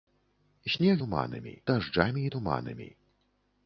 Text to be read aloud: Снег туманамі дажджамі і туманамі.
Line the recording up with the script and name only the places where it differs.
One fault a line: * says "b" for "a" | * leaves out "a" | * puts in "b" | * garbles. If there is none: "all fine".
all fine